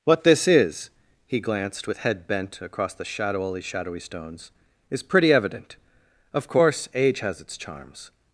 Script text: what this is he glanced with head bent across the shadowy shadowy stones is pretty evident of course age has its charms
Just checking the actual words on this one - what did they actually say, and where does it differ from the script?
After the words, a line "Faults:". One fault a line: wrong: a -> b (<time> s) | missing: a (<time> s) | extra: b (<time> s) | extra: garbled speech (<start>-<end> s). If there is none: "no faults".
what this is he glanced with head bent across the shadowy shadowy stones is pretty evident of course age has its charms
Faults:
no faults